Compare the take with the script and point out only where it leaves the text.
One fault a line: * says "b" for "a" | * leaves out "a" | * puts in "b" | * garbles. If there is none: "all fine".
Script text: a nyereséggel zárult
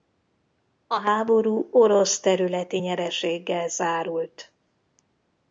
* puts in "háború orosz területi"